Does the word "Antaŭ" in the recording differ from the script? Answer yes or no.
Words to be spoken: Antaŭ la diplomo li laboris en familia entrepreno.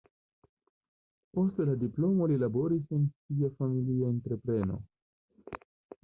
yes